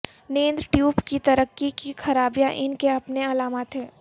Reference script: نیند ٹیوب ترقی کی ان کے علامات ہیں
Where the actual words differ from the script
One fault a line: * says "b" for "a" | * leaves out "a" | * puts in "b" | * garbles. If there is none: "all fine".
* puts in "کی"
* puts in "خرابیاں"
* puts in "اپنے"